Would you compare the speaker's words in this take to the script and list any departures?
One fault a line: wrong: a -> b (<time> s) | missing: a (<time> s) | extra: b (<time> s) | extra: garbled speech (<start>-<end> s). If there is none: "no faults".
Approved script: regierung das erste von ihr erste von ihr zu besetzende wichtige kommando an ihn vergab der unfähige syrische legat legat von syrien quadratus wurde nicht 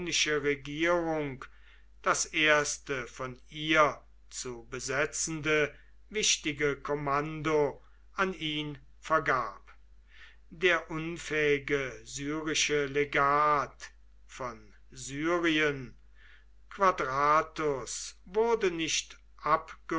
missing: erste von ihr (4.0 s)
missing: legat (13.9 s)